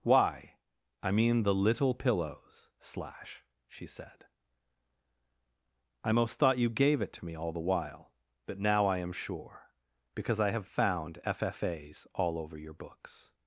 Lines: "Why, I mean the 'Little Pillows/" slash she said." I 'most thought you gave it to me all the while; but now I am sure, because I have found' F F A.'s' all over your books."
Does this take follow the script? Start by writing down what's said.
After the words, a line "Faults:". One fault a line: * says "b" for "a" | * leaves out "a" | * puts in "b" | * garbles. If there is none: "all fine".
"Why, I mean the 'Little Pillows/" slash she said." I 'most thought you gave it to me all the while; but now I am sure, because I have found' F F A.'s' all over your books."
Faults:
all fine